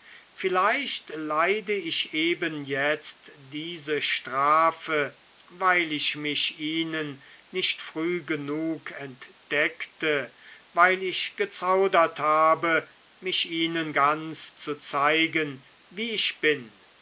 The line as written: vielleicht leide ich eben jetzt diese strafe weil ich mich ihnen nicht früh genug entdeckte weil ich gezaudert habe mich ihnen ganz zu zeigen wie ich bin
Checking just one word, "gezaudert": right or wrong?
right